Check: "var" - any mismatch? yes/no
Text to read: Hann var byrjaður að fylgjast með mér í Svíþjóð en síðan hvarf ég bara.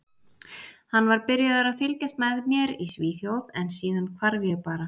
no